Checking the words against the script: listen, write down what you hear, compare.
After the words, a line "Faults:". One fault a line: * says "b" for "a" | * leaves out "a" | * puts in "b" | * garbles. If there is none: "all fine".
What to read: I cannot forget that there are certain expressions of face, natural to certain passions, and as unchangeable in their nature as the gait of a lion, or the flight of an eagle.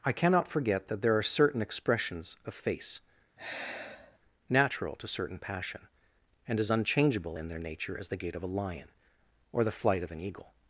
I cannot forget that there are certain expressions of face, natural to certain passion, and as unchangeable in their nature as the gait of a lion, or the flight of an eagle.
Faults:
* says "passion" for "passions"